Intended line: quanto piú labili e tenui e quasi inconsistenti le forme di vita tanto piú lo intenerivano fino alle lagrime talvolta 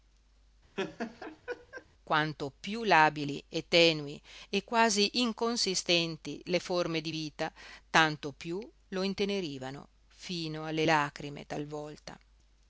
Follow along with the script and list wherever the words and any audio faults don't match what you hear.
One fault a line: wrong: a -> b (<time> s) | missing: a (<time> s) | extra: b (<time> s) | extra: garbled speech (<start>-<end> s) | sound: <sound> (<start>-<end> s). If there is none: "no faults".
sound: laugh (0.8-1.9 s)